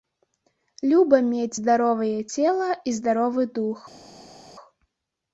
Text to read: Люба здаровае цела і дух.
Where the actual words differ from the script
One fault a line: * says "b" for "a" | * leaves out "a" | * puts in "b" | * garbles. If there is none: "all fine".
* puts in "мець"
* puts in "здаровы"